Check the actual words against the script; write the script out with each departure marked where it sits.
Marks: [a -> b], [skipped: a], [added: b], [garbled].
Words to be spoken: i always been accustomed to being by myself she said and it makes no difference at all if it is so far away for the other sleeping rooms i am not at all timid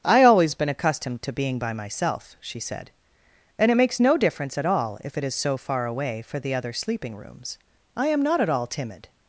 i always been accustomed to being by myself she said and it makes no difference at all if it is so far away for the other sleeping rooms i am not at all timid